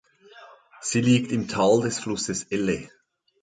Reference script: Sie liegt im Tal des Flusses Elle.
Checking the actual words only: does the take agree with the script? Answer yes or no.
yes